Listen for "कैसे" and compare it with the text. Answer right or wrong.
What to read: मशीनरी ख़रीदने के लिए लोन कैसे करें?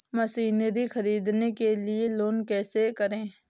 right